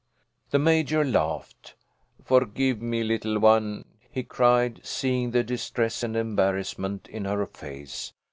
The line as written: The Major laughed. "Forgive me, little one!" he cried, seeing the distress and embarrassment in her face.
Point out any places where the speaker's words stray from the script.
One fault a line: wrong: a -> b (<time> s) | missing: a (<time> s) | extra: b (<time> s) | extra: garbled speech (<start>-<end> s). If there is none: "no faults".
no faults